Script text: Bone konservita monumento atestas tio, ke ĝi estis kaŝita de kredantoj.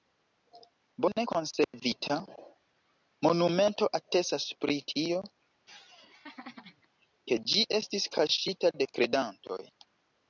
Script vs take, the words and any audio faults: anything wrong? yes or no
yes